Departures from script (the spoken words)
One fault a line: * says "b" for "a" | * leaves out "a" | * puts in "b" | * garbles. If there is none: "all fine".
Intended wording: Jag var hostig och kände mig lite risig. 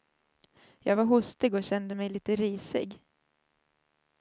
all fine